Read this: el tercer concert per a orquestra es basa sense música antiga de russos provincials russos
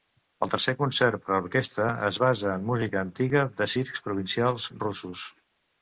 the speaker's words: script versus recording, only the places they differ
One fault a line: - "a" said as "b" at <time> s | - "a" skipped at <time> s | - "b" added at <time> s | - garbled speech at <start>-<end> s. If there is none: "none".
- "sense" said as "en" at 2.5 s
- "russos" said as "circs" at 3.8 s